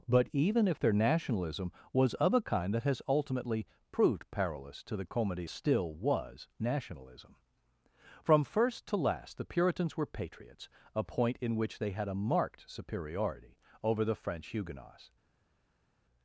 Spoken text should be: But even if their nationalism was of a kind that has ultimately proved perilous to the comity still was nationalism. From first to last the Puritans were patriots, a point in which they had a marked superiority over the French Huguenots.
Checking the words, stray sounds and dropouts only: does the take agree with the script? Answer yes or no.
yes